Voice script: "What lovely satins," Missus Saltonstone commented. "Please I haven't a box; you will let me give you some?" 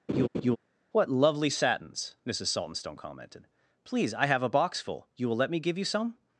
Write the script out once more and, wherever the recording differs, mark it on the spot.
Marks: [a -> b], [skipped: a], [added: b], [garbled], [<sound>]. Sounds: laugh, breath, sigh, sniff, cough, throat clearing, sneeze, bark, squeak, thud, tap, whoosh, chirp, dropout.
[laugh] "What lovely satins," Missus Saltonstone commented. "Please I [haven't -> have] a box; [added: full] you will let me give you some?"